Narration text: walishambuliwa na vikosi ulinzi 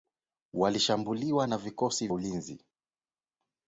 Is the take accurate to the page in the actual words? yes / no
yes